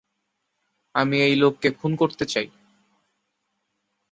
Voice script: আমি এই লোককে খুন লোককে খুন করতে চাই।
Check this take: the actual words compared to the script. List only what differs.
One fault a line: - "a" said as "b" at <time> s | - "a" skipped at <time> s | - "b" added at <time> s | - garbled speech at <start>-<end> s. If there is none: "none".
- "লোককে খুন" skipped at 1.9 s